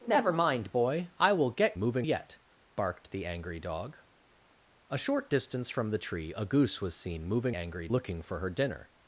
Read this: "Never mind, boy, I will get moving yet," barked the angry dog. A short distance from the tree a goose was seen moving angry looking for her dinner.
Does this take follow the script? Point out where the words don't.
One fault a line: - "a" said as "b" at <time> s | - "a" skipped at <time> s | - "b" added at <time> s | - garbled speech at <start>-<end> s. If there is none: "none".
none